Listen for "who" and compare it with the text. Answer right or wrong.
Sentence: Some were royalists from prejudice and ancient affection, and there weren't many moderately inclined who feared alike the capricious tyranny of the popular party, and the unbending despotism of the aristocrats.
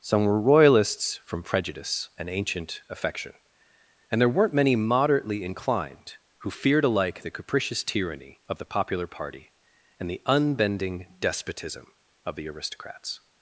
right